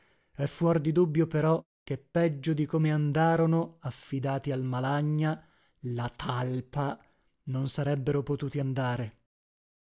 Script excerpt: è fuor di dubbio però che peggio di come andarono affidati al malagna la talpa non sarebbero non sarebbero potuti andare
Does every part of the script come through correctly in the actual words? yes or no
no